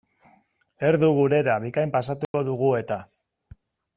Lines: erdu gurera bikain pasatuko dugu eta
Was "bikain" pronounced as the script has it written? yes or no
yes